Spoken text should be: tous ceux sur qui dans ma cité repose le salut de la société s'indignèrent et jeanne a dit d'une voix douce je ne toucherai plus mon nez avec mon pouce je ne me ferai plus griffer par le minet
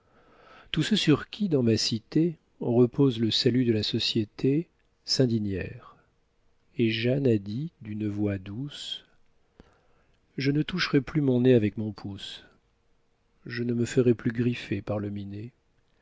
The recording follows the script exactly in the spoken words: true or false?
true